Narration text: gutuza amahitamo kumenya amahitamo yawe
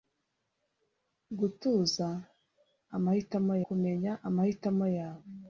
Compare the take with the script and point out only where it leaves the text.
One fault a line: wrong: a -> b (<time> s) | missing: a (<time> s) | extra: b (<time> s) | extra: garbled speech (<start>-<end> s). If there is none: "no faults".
no faults